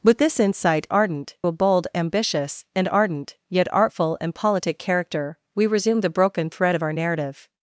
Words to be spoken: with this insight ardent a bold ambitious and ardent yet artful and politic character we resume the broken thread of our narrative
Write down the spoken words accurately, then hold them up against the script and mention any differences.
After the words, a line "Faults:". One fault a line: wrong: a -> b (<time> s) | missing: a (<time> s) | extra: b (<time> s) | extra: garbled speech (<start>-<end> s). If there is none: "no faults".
with this insight ardent a bold ambitious and ardent yet artful and politic character we resume the broken thread of our narrative
Faults:
no faults